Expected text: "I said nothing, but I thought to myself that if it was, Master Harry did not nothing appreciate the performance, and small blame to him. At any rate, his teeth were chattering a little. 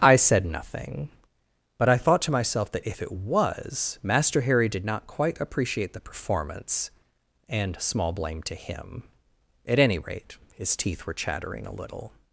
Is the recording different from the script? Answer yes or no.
yes